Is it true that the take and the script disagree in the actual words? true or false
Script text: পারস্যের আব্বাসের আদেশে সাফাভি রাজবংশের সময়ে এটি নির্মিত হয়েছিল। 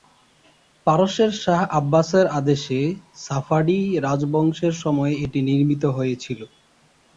true